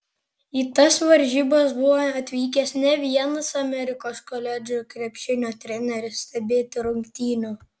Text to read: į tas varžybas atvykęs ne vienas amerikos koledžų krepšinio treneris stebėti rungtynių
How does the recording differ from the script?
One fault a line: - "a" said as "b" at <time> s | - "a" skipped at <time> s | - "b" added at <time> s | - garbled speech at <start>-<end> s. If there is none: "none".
- "buvo" added at 1.8 s